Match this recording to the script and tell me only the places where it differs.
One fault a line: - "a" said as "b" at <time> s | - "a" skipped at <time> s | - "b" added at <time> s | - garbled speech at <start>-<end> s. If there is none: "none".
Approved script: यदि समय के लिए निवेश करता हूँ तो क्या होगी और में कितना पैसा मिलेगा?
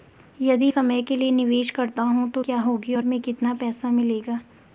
none